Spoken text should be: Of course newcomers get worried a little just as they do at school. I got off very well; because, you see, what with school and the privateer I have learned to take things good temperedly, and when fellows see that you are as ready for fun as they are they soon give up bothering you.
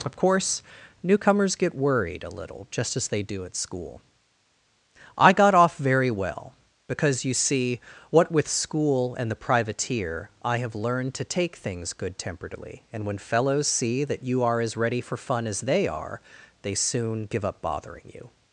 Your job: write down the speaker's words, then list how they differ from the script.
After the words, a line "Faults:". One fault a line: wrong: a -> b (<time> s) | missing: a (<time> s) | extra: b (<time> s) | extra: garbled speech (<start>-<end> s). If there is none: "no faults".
Of course newcomers get worried a little just as they do at school. I got off very well; because, you see, what with school and the privateer I have learned to take things good temperedly, and when fellows see that you are as ready for fun as they are they soon give up bothering you.
Faults:
no faults